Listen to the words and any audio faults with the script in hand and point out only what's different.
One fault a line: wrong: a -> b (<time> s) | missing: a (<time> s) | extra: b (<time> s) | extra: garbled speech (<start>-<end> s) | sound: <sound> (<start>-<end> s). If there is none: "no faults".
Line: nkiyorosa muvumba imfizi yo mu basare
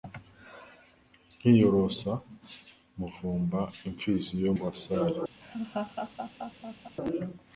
missing: mu (4.5 s)
sound: laugh (5.4-7.0 s)